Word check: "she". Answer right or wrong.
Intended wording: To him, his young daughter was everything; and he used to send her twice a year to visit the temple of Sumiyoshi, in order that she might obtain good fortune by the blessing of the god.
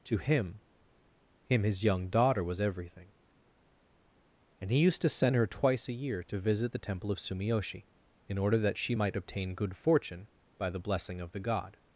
right